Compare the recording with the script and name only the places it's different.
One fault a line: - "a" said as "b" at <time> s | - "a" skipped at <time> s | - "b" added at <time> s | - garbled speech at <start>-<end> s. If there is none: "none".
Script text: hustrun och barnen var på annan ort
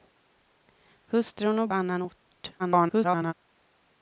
- "barnen var på" skipped at 1.7 s
- garbled speech at 2.6-3.3 s